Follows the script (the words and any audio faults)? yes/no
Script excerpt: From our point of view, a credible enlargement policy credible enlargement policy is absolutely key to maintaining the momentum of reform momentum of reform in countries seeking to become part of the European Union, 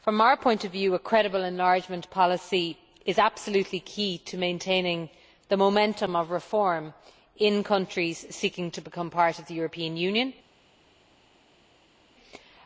no